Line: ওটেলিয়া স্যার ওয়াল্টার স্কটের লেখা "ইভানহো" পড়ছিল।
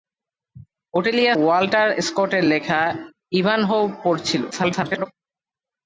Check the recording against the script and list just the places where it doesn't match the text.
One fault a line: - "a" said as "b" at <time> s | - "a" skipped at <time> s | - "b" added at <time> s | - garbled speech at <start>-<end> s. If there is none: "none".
- "স্যার" skipped at 1.4 s
- garbled speech at 4.5-5.1 s